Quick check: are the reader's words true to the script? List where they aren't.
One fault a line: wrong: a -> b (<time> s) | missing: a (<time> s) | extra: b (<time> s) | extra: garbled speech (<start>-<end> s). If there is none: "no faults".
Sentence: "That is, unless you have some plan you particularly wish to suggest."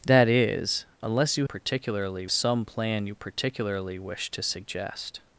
wrong: have -> particularly (1.4 s)